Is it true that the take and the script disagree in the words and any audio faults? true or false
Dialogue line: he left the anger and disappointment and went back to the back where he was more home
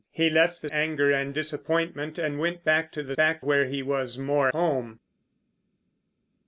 false